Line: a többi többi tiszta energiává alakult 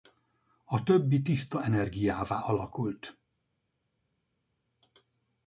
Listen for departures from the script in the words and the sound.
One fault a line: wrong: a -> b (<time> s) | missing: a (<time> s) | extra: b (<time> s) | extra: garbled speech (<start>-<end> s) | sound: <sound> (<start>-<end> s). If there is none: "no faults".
missing: többi (1.2 s)